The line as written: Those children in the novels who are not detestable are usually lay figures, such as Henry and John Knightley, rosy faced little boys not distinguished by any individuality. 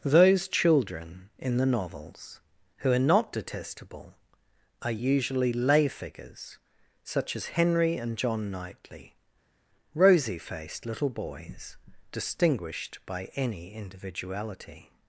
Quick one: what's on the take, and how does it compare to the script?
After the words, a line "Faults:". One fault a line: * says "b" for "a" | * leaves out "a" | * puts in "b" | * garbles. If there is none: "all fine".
Those children in the novels who are not detestable are usually lay figures, such as Henry and John Knightley, rosy faced little boys distinguished by any individuality.
Faults:
* leaves out "not"